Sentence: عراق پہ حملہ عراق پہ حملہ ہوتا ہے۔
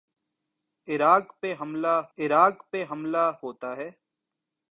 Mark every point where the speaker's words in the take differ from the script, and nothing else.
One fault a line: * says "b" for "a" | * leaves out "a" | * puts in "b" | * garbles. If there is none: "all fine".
all fine